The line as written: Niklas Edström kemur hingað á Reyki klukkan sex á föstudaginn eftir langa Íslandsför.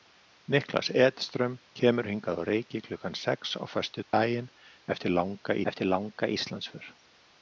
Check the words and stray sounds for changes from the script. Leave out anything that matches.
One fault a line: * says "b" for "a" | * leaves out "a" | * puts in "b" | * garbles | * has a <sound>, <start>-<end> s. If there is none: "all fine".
* has a dropout, 4.0-4.1 s
* puts in "eftir langa"